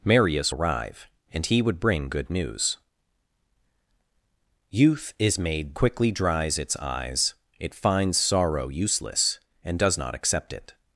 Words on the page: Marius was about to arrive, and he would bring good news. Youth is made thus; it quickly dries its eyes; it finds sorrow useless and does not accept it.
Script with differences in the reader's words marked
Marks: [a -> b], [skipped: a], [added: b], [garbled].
Marius [skipped: was about to] arrive, and he would bring good news. Youth is made [skipped: thus; it] quickly dries its eyes; it finds sorrow useless and does not accept it.